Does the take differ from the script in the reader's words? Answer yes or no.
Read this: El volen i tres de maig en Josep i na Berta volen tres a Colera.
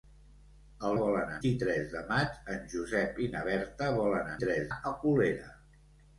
no